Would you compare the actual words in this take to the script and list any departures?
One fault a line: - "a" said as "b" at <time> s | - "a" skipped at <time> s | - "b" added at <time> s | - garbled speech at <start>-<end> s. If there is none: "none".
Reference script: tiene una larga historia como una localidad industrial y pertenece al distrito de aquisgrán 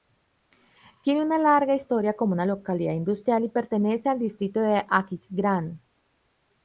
none